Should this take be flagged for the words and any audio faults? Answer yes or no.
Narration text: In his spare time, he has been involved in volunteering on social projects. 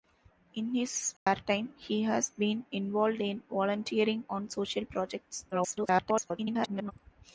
yes